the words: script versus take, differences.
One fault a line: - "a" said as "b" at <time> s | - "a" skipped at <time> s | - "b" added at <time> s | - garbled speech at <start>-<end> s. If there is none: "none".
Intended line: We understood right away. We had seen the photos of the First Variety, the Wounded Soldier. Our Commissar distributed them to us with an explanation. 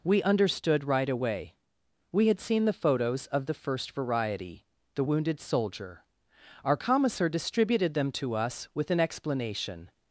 none